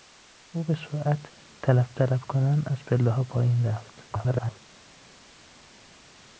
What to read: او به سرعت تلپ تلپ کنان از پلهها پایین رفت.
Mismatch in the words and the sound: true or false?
true